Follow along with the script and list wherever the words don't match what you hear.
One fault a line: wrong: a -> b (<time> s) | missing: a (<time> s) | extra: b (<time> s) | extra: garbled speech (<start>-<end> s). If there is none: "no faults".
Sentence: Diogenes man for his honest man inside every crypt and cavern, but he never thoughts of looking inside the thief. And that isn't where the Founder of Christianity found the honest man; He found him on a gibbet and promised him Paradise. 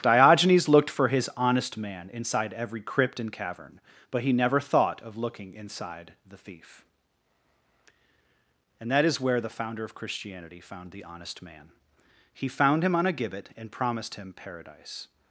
wrong: man -> looked (0.7 s)
wrong: thoughts -> thought (4.6 s)
wrong: isn't -> is (9.1 s)